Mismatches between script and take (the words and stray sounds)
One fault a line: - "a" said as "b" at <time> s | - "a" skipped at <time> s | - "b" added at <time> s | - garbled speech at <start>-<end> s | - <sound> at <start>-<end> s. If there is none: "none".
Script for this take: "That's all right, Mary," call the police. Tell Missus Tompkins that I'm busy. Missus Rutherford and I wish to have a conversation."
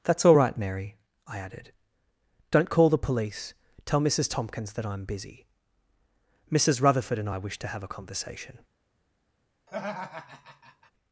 - "I added Don't" added at 1.3 s
- laugh at 9.7-10.9 s